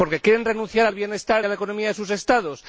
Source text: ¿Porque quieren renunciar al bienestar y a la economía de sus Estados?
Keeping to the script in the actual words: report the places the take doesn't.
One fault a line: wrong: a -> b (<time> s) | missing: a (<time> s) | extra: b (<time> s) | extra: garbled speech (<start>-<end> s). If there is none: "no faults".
missing: y (1.5 s)